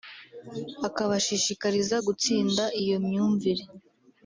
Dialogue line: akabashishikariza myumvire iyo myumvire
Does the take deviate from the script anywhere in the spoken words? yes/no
yes